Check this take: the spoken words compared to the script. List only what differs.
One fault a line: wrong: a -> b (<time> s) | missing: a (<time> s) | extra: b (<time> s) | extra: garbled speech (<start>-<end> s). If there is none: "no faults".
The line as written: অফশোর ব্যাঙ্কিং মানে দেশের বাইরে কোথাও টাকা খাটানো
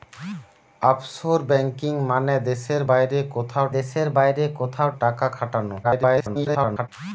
extra: দেশের বাইরে কোথাও (3.8 s)
extra: garbled speech (5.8-6.9 s)